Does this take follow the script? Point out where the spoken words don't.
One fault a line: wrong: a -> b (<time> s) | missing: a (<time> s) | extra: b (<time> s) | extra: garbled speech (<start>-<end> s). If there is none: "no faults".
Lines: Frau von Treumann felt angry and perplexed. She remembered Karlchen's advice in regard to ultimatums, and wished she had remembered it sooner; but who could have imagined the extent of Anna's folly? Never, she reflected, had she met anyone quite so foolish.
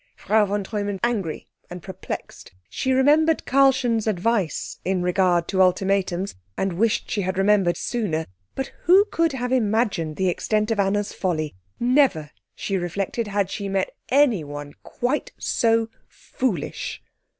missing: felt (1.0 s)
missing: it (7.8 s)